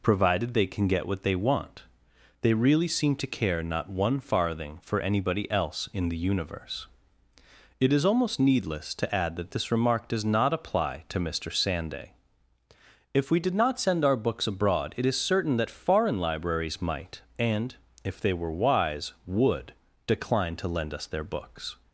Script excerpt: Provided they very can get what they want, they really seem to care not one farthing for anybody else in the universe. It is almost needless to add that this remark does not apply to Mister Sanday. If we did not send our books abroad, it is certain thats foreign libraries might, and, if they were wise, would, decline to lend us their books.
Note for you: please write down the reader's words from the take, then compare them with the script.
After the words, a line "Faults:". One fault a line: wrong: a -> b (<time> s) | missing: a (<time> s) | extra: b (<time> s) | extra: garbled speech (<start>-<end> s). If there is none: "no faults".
Provided they can get what they want, they really seem to care not one farthing for anybody else in the universe. It is almost needless to add that this remark does not apply to Mister Sanday. If we did not send our books abroad, it is certain that foreign libraries might, and, if they were wise, would, decline to lend us their books.
Faults:
missing: very (0.7 s)
wrong: thats -> that (15.6 s)